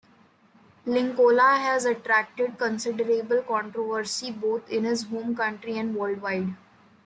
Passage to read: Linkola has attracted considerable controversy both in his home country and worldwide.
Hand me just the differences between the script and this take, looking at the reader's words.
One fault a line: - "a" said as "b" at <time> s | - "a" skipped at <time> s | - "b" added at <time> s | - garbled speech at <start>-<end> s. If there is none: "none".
none